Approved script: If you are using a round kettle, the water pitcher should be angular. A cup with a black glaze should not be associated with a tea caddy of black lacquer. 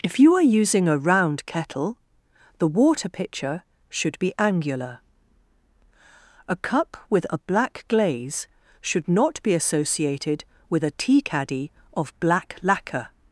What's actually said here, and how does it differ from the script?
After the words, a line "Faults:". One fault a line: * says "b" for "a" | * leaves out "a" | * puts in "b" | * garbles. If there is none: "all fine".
If you are using a round kettle, the water pitcher should be angular. A cup with a black glaze should not be associated with a tea caddy of black lacquer.
Faults:
all fine